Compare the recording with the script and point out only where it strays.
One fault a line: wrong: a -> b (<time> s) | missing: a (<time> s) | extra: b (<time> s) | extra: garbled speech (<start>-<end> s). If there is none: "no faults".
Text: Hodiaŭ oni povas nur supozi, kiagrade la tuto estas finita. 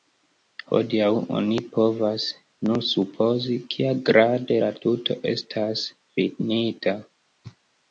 no faults